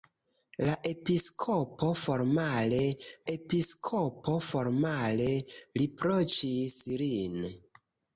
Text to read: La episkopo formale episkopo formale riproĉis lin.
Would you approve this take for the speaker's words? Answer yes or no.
yes